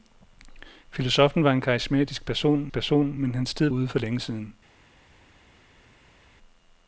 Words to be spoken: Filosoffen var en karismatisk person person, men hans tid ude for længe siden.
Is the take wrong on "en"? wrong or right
right